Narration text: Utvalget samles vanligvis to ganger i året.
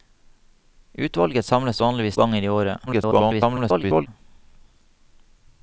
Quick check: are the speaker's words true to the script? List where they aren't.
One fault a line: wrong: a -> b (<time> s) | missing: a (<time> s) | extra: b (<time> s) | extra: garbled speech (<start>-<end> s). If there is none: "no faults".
missing: to (2.2 s)
extra: garbled speech (2.9-4.1 s)